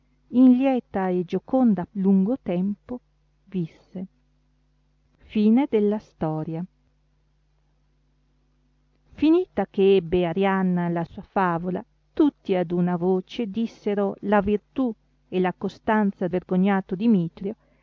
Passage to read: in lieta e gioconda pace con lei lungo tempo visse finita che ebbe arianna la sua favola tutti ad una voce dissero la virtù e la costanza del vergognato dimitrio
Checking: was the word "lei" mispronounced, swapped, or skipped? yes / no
yes